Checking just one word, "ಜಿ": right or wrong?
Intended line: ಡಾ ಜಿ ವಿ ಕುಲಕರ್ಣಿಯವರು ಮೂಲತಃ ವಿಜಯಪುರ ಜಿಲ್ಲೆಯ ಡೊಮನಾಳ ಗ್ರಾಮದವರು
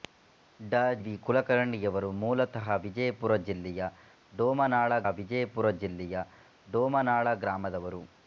wrong